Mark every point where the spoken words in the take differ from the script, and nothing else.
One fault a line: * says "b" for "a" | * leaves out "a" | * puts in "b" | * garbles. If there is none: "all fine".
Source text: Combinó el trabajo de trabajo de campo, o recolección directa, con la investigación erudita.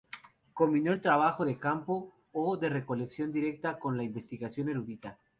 * leaves out "trabajo de"
* puts in "de"